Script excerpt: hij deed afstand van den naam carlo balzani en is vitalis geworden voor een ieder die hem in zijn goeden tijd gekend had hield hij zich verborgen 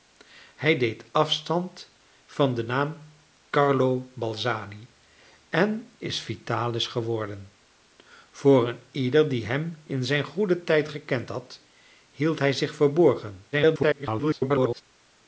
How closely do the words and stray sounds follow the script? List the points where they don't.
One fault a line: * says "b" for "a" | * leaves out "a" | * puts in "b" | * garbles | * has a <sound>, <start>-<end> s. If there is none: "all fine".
* garbles